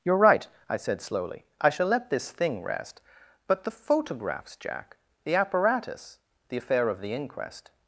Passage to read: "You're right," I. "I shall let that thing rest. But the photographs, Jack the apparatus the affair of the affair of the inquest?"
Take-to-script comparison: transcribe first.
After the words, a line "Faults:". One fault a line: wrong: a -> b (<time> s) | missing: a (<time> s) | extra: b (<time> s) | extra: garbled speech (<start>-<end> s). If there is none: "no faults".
"You're right," I said slowly. "I shall let this thing rest. But the photographs, Jack the apparatus the affair of the inquest?"
Faults:
extra: said slowly (0.8 s)
wrong: that -> this (2.1 s)
missing: affair of the (7.1 s)